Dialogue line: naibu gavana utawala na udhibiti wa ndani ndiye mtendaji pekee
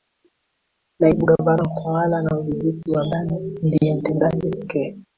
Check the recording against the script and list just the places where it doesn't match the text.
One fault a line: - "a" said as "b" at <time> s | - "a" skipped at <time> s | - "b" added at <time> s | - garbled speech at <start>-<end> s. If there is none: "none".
none